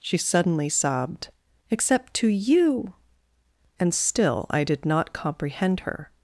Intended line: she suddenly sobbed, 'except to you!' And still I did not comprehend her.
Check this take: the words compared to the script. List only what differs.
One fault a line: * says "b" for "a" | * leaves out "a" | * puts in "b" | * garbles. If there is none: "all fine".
all fine